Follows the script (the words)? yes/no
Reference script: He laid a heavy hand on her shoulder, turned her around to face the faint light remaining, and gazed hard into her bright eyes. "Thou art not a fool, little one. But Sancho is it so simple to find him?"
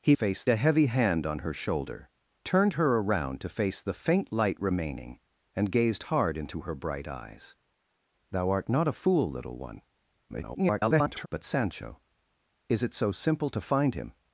no